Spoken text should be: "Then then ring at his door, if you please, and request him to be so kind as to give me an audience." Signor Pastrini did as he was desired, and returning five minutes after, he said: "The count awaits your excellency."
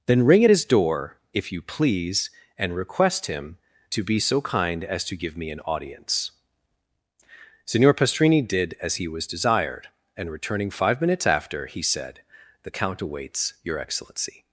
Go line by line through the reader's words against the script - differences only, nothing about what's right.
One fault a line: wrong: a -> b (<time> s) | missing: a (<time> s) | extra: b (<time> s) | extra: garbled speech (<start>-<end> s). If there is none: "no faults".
missing: then (0.2 s)